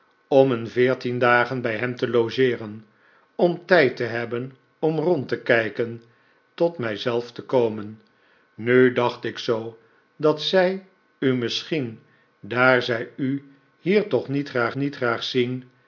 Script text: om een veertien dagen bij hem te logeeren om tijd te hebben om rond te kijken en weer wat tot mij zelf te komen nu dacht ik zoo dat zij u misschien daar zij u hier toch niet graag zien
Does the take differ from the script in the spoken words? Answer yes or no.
yes